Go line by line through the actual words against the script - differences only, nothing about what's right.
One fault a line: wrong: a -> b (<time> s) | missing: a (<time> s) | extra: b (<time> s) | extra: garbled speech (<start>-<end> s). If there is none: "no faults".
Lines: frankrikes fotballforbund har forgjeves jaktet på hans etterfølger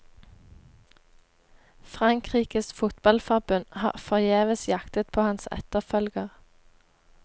no faults